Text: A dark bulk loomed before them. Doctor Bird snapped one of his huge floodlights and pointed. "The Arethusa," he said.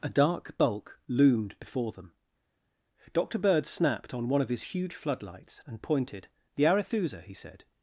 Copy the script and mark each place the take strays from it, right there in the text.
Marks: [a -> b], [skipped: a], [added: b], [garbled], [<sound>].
A dark bulk loomed before them. Doctor Bird snapped [added: on] one of his huge floodlights and pointed. "The Arethusa," he said.